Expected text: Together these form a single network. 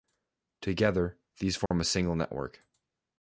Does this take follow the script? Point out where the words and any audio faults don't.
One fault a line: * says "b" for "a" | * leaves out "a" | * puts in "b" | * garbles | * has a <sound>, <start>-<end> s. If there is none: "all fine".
* has a dropout, 1.7-1.7 s